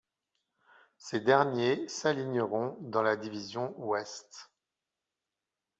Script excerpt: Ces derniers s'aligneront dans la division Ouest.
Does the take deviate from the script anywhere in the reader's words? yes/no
no